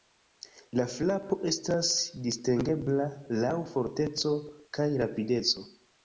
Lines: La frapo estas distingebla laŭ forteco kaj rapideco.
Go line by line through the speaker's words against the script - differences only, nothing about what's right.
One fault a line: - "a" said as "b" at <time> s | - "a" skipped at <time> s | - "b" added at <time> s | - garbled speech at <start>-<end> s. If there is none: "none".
none